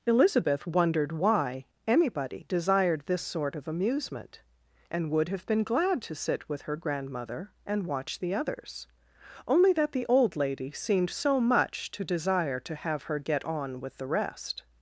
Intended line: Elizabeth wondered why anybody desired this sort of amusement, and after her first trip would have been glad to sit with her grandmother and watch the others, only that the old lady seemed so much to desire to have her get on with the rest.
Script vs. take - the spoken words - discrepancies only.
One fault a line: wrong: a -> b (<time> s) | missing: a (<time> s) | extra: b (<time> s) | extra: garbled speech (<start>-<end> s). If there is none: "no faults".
missing: after her first trip (5.1 s)